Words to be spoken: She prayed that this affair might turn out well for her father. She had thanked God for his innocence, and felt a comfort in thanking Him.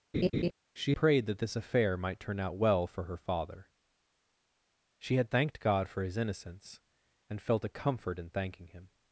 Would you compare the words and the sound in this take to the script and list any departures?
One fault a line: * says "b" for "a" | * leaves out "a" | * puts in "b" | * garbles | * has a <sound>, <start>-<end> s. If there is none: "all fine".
* has a laugh, 0.1-0.5 s